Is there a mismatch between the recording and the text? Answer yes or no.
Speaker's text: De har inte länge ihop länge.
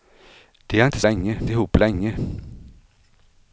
no